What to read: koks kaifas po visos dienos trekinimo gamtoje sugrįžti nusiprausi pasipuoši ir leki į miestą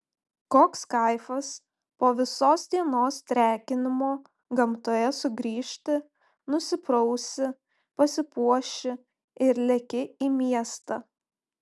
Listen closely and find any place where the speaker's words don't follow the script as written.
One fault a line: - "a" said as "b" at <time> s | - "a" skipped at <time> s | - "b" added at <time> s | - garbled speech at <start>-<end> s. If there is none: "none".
none